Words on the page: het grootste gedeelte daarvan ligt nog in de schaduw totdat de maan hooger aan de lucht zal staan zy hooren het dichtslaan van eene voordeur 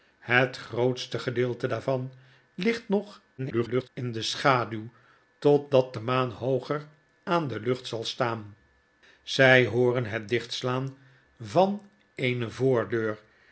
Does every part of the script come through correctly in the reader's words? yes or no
no